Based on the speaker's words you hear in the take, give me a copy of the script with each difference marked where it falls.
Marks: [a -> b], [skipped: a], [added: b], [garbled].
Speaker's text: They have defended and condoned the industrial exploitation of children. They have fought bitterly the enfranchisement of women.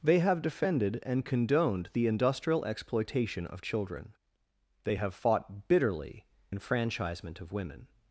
They have defended and condoned the industrial exploitation of children. They have fought bitterly [skipped: the] enfranchisement of women.